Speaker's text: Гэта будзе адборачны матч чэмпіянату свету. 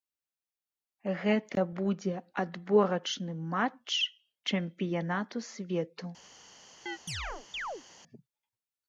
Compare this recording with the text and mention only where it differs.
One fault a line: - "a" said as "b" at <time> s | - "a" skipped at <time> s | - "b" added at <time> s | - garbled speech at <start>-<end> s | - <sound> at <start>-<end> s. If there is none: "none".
- chirp at 6.9-7.8 s